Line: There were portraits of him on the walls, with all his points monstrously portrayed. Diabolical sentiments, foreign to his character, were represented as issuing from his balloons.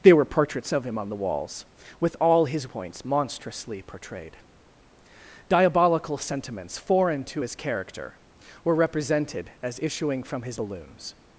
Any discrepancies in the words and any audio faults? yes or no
no